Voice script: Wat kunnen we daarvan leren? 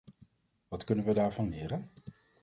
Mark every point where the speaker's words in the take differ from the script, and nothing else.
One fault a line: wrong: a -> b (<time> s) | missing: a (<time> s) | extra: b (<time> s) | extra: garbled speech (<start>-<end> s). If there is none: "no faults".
no faults